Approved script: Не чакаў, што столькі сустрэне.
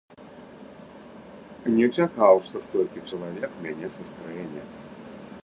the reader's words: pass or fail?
fail